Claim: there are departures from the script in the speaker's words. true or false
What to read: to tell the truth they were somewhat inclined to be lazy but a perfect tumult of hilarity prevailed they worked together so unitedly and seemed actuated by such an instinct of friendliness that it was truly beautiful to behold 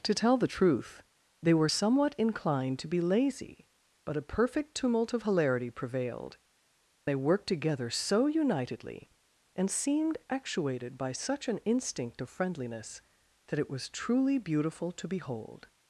false